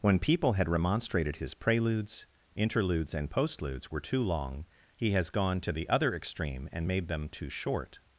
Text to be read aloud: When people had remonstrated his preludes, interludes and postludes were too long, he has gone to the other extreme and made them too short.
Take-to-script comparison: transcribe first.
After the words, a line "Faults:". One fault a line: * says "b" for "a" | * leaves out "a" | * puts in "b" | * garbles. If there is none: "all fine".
When people had remonstrated his preludes, interludes and postludes were too long, he has gone to the other extreme and made them too short.
Faults:
all fine